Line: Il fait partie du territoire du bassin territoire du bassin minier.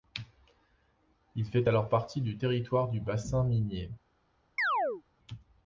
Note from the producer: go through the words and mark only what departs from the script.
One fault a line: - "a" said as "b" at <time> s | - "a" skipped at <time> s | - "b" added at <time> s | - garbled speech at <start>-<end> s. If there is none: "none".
- "alors" added at 1.7 s
- "territoire du bassin" skipped at 3.4 s